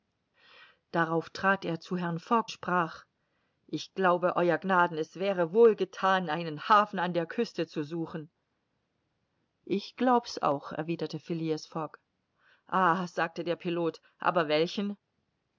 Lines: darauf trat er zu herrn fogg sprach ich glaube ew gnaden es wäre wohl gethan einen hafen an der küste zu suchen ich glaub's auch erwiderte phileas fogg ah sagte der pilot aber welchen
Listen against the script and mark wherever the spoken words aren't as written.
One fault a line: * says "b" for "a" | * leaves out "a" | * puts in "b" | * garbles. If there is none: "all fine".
all fine